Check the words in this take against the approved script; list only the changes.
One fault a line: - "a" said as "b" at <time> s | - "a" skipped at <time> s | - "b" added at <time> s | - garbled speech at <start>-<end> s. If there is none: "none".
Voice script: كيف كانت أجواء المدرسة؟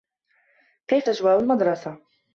- "كانت" skipped at 1.1 s